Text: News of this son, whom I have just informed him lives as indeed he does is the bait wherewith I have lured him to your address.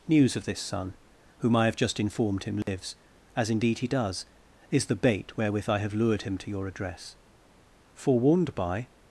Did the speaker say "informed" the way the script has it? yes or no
yes